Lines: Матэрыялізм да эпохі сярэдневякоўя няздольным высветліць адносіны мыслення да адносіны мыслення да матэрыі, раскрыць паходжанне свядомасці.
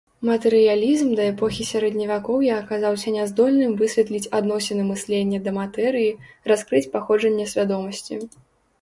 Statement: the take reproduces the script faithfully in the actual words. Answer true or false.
false